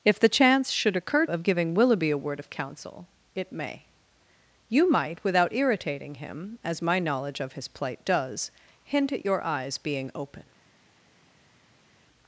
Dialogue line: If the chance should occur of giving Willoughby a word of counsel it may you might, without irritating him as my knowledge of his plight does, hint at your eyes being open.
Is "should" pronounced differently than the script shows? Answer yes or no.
no